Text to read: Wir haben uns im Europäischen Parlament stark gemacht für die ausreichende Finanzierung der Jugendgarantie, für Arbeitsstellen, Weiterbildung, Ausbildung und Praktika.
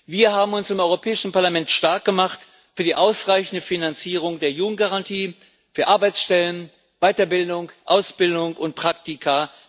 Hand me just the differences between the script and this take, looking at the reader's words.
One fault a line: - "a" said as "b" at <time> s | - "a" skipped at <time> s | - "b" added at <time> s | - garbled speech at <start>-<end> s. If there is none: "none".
none